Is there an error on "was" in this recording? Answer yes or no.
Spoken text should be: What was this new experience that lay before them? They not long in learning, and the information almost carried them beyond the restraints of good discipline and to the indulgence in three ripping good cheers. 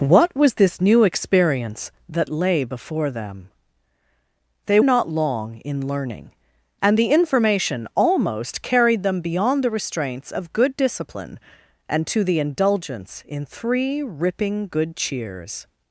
no